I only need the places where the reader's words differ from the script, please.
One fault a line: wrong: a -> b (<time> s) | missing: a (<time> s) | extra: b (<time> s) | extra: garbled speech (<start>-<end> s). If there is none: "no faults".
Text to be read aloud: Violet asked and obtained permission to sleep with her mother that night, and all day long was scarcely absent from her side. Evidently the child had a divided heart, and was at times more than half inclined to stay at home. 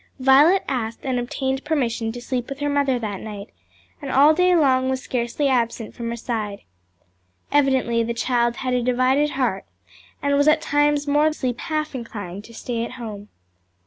wrong: than -> sleep (11.3 s)